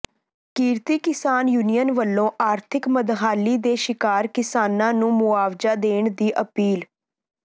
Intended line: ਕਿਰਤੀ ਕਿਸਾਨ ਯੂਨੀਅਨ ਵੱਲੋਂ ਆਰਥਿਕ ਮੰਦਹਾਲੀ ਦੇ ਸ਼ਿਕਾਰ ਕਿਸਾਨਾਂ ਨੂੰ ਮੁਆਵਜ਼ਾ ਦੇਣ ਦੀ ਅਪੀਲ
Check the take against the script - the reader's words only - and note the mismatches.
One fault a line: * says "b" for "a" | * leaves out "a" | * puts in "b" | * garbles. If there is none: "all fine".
all fine